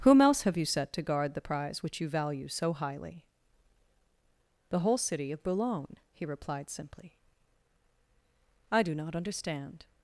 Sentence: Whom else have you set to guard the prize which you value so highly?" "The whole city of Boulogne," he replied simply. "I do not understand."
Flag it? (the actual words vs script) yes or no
no